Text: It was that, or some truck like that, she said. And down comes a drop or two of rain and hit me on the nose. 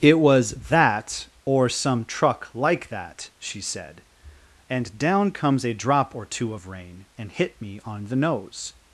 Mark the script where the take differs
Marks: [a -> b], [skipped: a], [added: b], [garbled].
It was that, or some truck like that, she said. And down comes a drop or two of rain and hit me on the nose.